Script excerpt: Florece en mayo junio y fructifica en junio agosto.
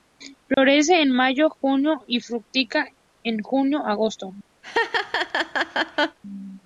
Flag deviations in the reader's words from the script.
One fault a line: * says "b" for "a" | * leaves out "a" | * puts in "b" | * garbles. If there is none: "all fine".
all fine